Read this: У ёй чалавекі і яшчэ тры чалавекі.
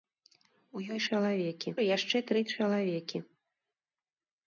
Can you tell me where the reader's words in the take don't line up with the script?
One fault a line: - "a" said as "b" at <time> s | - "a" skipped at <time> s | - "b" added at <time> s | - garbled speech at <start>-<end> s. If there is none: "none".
none